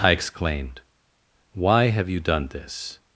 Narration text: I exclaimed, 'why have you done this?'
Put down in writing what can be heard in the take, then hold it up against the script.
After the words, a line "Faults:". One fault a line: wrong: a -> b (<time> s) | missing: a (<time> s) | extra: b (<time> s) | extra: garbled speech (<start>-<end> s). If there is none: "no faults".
I exclaimed, 'why have you done this?'
Faults:
no faults